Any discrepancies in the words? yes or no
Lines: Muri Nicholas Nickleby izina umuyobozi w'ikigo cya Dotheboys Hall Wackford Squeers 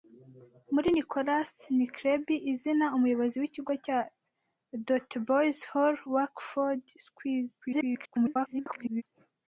yes